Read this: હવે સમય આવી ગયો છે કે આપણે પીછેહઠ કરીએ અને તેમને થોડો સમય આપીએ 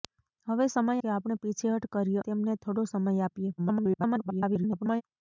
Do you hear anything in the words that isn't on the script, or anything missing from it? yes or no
yes